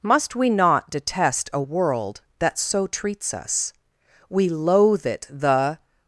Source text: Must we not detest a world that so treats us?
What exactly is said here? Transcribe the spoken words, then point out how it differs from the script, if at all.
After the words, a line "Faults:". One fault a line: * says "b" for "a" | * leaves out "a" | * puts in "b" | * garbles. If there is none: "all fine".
Must we not detest a world that so treats us? We loathe it the
Faults:
* puts in "We loathe it the"